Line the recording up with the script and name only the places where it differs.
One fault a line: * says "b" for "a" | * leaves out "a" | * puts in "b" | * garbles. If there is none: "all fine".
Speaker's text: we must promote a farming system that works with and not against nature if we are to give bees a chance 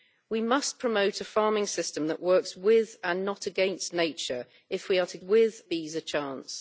* says "with" for "give"